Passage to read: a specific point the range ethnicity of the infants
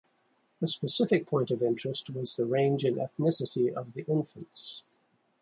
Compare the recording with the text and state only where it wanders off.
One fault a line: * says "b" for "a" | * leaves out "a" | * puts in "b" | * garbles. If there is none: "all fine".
* puts in "of interest was"
* puts in "in"